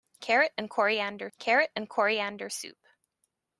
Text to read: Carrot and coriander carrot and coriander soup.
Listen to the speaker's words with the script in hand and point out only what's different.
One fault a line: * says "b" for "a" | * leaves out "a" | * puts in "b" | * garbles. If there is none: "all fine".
all fine